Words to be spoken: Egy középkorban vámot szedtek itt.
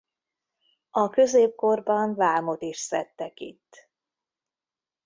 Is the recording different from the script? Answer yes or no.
yes